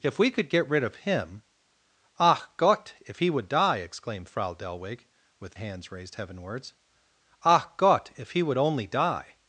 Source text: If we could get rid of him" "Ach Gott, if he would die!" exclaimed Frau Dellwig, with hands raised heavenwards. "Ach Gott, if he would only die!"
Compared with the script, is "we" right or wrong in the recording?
right